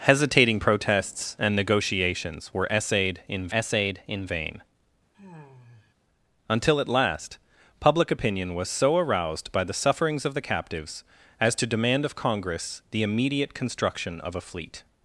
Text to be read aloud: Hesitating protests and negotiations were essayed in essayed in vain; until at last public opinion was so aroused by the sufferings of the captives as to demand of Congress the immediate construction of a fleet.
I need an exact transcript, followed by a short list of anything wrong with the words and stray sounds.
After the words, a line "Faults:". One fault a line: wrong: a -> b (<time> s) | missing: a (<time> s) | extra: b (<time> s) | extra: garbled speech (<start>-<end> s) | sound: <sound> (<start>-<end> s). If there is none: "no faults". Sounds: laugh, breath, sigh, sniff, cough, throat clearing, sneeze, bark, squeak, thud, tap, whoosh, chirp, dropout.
Hesitating protests and negotiations were essayed in essayed in vain; until at last public opinion was so aroused by the sufferings of the captives as to demand of Congress the immediate construction of a fleet.
Faults:
sound: sigh (5.1-5.9 s)